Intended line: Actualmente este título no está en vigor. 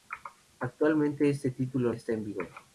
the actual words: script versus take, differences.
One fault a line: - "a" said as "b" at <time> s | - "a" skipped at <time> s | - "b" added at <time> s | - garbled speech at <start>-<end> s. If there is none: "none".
- "no" skipped at 1.9 s